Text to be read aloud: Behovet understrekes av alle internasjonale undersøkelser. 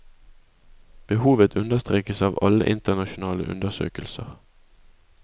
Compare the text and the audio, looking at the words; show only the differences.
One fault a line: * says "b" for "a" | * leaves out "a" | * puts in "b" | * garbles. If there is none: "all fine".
all fine